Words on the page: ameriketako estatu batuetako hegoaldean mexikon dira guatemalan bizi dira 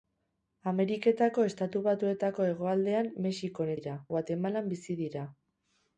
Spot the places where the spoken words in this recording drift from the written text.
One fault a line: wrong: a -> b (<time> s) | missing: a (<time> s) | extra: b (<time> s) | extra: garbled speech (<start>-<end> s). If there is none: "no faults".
no faults